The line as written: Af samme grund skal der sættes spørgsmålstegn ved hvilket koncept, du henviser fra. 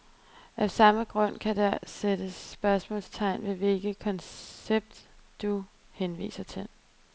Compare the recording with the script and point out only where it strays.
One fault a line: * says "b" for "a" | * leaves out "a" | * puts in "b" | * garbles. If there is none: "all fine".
* says "kan" for "skal"
* says "til" for "fra"